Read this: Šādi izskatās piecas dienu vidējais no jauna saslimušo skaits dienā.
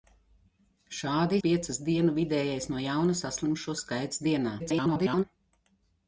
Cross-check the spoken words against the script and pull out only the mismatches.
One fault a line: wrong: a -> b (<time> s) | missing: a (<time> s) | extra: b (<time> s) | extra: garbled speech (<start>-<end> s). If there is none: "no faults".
missing: izskatās (1.4 s)
extra: garbled speech (4.6-5.2 s)